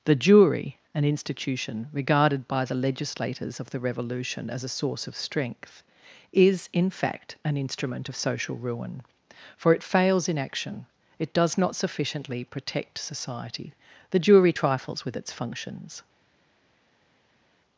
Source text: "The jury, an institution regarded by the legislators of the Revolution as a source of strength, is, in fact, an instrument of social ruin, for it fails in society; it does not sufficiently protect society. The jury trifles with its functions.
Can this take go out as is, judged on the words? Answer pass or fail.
fail